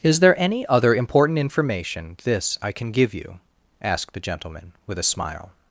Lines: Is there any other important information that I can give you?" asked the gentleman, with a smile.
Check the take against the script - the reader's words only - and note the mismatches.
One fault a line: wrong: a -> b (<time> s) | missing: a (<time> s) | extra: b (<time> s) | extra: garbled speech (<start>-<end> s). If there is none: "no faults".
wrong: that -> this (2.2 s)